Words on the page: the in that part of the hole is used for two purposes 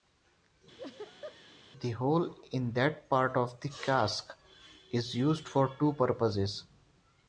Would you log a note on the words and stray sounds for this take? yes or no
yes